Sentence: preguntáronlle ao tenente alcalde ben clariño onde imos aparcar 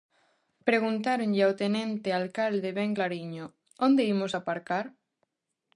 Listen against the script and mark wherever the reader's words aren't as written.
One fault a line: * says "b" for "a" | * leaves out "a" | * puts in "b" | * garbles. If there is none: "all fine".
all fine